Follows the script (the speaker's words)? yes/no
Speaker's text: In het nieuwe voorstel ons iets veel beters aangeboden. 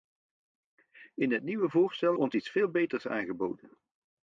yes